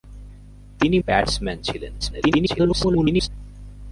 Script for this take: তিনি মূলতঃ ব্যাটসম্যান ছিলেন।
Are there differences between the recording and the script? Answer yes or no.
yes